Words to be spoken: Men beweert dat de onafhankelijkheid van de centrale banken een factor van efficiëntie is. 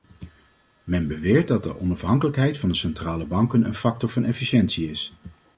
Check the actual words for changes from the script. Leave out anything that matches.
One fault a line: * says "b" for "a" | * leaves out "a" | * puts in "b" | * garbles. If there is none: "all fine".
all fine